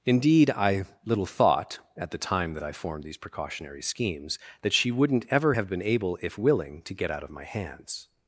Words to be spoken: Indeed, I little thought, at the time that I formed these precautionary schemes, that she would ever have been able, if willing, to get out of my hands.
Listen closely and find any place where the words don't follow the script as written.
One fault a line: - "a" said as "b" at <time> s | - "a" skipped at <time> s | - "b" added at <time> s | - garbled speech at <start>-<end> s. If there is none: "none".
- "would" said as "wouldn't" at 4.9 s